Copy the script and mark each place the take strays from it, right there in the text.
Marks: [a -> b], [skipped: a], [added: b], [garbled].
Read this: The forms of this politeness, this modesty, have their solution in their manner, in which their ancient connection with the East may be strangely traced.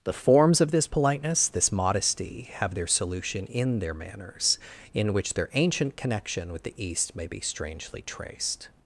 The forms of this politeness, this modesty, have their solution in their [manner, -> manners] in which their ancient connection with the East may be strangely traced.